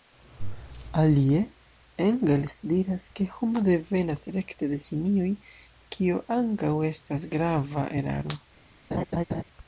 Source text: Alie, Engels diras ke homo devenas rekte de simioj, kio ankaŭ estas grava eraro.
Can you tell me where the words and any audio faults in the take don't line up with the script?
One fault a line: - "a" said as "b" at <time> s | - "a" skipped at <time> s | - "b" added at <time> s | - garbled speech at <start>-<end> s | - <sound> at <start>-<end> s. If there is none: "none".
- laugh at 8.9-9.4 s